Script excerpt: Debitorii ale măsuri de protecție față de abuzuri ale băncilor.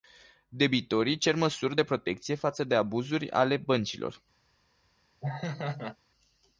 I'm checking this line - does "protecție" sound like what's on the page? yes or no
yes